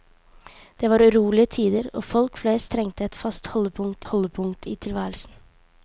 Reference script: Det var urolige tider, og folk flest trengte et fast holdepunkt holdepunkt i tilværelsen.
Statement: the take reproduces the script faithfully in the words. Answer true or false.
true